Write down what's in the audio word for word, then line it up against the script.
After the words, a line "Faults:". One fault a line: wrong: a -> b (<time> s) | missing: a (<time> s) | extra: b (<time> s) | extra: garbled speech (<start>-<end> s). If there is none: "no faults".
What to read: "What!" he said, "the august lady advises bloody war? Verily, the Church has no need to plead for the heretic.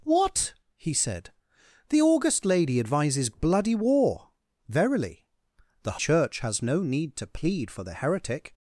"What!" he said, "the august lady advises bloody war? Verily, the Church has no need to plead for the heretic.
Faults:
no faults